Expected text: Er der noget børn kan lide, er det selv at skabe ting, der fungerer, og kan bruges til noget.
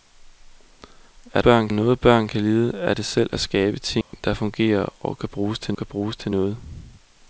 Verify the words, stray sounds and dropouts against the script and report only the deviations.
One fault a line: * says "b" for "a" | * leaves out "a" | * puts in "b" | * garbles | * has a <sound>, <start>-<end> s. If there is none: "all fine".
* says "børn" for "der"
* has a dropout, 4.0-4.1 s
* puts in "kan bruges til"